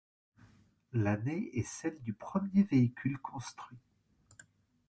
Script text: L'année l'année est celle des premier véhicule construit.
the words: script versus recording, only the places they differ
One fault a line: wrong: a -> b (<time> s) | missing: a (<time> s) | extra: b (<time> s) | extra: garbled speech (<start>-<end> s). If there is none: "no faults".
missing: l'année (1.5 s)
wrong: des -> du (2.0 s)